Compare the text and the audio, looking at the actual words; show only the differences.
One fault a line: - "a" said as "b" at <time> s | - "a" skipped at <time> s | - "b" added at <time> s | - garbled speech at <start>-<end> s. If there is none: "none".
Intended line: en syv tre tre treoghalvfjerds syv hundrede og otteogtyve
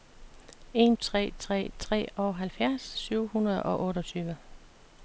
- "syv" skipped at 1.0 s